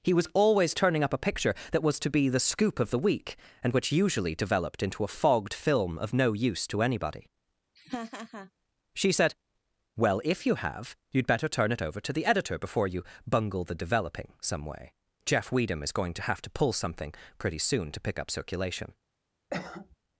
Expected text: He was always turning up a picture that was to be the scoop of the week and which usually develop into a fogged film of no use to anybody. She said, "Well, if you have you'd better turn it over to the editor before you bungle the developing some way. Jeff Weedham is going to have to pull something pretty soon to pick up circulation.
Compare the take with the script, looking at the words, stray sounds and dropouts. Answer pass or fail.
fail